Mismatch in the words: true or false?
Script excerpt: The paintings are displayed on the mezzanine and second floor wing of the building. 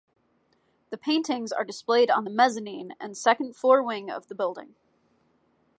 false